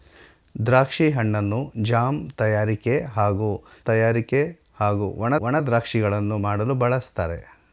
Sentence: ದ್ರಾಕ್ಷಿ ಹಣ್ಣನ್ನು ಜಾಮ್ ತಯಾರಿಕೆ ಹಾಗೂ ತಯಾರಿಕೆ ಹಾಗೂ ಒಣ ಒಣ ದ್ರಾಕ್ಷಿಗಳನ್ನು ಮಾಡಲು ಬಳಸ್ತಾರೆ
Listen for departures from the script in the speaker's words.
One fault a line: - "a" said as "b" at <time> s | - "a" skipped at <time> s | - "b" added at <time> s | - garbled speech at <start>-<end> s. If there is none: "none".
none